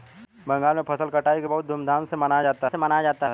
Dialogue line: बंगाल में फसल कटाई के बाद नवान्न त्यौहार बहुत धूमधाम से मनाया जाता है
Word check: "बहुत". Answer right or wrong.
wrong